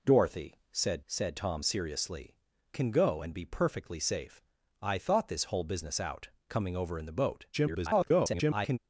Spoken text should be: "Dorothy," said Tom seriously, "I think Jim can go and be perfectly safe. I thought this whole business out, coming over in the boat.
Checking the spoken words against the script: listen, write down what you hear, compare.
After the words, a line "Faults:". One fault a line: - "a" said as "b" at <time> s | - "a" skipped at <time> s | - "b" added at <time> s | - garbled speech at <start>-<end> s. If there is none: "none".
"Dorothy," said said Tom seriously, "can go and be perfectly safe. I thought this whole business out, coming over in the boat. [garbled]
Faults:
- "said" added at 1.1 s
- "I think Jim" skipped at 2.4 s
- garbled speech at 7.5-8.8 s